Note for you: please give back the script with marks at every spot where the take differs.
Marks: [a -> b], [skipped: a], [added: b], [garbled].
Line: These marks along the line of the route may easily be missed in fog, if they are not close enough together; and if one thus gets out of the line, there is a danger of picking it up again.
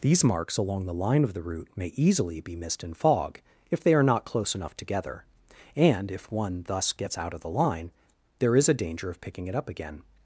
These marks along the line of the route may easily be missed in fog, if they are not close enough together; and if one thus gets out of the line, there is a danger of picking it up again.